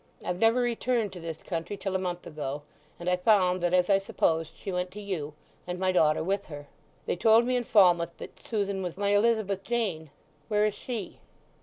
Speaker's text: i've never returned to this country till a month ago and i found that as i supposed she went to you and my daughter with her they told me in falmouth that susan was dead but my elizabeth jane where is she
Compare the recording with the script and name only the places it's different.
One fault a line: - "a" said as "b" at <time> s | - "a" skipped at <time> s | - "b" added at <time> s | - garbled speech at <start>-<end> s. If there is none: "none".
- "dead but" skipped at 8.9 s